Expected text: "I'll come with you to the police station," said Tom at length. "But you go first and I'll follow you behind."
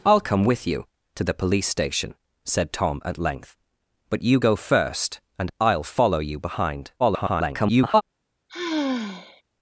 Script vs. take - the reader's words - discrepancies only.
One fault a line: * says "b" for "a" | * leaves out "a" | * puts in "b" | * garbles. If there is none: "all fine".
* garbles